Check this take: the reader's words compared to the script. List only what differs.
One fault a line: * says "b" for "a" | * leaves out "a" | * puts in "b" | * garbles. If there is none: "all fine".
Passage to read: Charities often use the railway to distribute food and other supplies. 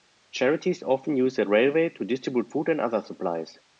all fine